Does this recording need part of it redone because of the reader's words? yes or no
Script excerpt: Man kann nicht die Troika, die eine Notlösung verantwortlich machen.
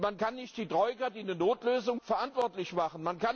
no